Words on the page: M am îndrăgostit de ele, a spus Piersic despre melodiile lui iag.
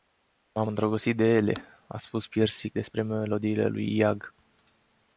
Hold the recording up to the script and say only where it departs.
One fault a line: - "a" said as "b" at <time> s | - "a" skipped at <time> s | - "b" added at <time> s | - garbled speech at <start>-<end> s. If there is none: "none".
none